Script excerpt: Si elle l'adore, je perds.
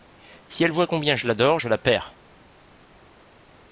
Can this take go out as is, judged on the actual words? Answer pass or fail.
fail